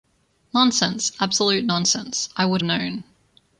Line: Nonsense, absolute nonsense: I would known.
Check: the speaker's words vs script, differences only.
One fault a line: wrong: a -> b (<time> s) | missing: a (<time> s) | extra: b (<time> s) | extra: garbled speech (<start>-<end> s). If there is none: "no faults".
no faults